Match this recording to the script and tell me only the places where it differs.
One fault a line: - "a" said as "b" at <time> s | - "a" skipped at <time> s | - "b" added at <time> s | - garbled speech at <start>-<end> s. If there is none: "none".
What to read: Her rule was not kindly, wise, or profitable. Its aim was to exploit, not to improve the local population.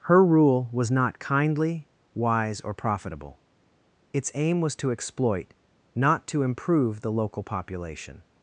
none